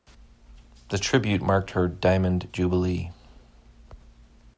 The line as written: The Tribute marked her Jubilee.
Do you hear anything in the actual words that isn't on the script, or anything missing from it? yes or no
yes